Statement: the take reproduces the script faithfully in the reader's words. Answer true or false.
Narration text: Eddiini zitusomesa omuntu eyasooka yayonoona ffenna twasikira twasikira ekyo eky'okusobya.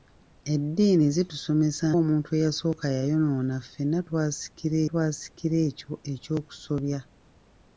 true